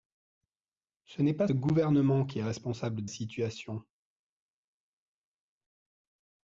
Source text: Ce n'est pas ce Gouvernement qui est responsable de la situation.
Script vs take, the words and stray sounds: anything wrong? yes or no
yes